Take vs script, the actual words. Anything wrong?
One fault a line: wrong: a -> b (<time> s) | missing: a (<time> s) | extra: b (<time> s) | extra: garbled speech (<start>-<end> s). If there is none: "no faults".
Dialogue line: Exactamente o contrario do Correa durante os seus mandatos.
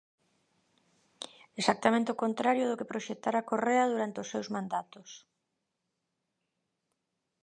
extra: que proxectara (2.8 s)